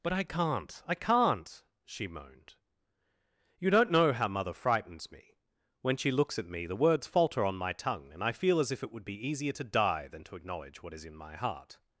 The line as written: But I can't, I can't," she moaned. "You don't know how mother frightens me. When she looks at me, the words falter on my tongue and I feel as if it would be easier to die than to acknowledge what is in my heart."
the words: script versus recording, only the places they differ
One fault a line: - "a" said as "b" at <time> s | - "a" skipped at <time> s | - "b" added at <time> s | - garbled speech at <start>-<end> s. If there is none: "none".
none